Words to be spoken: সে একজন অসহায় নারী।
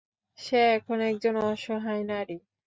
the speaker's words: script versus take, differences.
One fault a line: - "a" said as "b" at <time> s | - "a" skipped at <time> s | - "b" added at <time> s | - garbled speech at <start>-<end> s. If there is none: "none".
- "এখন" added at 0.8 s